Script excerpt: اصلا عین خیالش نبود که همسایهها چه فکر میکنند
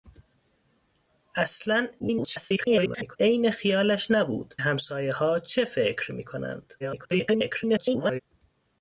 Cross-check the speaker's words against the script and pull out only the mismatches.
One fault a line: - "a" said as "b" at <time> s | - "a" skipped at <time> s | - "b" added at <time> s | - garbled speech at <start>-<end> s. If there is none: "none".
- garbled speech at 2.0-3.2 s
- "که" skipped at 4.5 s
- garbled speech at 6.8-8.2 s